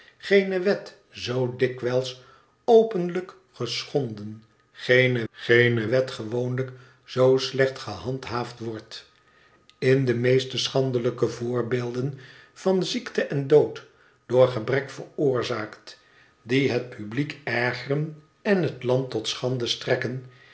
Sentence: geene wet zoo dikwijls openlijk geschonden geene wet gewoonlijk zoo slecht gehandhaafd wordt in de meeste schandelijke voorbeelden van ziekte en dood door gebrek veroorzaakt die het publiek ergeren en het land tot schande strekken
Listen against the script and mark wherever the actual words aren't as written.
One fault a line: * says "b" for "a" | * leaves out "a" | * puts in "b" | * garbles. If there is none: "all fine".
* puts in "geene"